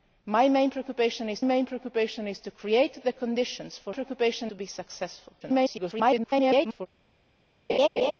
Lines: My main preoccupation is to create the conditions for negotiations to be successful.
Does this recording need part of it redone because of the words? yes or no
yes